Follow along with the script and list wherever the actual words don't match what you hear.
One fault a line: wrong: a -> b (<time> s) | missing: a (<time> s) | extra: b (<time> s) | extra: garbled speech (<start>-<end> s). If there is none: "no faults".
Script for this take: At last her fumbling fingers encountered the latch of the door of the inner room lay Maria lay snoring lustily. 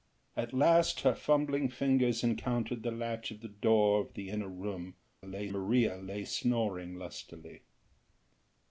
no faults